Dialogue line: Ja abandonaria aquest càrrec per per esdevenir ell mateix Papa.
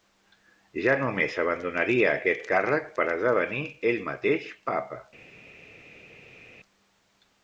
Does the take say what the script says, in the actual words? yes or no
no